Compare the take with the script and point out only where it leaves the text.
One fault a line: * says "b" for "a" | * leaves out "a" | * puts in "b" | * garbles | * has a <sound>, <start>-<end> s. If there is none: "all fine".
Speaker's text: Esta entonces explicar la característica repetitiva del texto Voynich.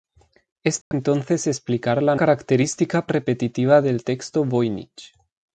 * has a dropout, 0.8-0.9 s